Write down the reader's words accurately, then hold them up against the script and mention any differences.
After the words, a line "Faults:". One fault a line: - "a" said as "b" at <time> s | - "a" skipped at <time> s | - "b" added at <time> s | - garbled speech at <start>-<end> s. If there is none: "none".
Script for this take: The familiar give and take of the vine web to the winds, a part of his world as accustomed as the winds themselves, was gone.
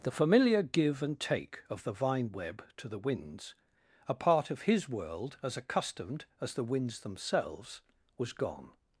The familiar give and take of the vine web to the winds, a part of his world as accustomed as the winds themselves, was gone.
Faults:
none